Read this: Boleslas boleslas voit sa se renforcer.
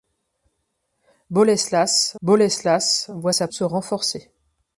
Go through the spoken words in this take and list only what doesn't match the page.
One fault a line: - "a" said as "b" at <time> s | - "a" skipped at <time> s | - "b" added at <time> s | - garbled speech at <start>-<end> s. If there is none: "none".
none